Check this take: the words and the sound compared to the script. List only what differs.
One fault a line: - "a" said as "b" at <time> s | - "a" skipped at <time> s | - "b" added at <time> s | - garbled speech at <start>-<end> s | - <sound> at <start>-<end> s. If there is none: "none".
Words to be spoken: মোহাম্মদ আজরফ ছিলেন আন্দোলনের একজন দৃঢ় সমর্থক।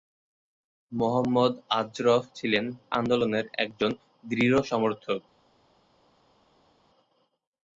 none